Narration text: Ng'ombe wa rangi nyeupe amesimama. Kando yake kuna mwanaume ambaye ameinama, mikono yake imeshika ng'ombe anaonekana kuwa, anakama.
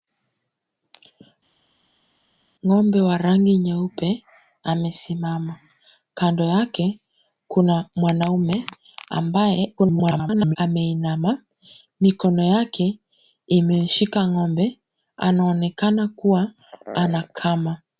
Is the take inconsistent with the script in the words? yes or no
yes